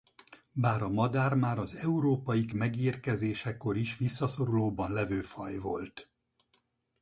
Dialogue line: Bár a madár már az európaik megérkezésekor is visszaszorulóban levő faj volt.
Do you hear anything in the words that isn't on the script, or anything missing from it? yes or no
no